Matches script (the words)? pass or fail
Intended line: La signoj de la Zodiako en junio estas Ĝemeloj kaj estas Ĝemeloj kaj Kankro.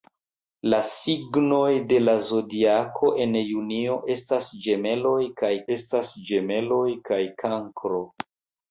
pass